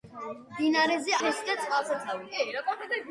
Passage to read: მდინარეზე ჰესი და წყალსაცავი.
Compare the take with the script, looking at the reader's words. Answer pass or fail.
pass